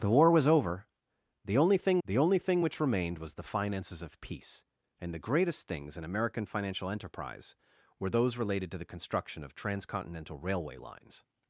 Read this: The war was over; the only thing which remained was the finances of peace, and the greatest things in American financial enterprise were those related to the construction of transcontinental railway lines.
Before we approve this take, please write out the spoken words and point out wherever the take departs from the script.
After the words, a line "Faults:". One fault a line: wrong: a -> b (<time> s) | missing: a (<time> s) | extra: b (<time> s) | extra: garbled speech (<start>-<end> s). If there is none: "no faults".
The war was over; the only thing the only thing which remained was the finances of peace, and the greatest things in American financial enterprise were those related to the construction of transcontinental railway lines.
Faults:
extra: the only thing (2.1 s)